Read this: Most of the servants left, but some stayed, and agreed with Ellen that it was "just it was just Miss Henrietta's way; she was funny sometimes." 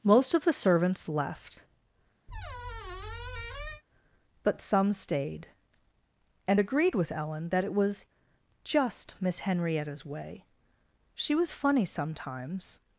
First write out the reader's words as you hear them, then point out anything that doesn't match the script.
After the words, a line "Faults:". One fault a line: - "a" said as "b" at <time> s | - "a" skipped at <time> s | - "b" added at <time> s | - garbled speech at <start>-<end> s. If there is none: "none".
Most of the servants left, but some stayed, and agreed with Ellen that it was "just Miss Henrietta's way; she was funny sometimes."
Faults:
- "it was just" skipped at 9.1 s